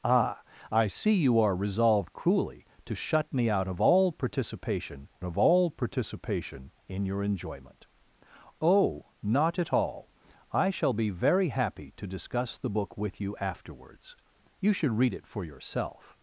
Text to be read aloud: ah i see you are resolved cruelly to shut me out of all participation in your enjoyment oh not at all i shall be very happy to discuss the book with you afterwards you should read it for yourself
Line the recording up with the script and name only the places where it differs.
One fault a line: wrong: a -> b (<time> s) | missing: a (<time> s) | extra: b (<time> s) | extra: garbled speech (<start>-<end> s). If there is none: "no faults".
extra: of all participation (5.2 s)